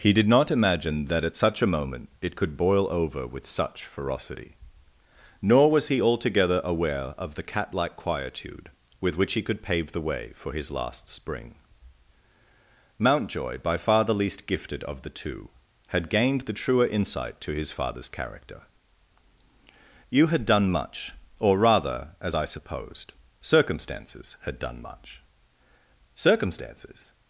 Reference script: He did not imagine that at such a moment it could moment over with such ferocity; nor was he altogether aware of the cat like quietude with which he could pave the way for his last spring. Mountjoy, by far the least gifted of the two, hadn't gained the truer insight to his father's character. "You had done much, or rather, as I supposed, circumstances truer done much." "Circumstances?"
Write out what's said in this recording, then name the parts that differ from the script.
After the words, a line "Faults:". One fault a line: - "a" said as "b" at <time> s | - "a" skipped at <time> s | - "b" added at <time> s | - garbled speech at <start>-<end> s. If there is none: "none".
He did not imagine that at such a moment it could boil over with such ferocity; nor was he altogether aware of the cat like quietude with which he could pave the way for his last spring. Mountjoy, by far the least gifted of the two, had gained the truer insight to his father's character. "You had done much, or rather, as I supposed, circumstances had done much." "Circumstances?"
Faults:
- "moment" said as "boil" at 2.6 s
- "hadn't" said as "had" at 15.9 s
- "truer" said as "had" at 24.4 s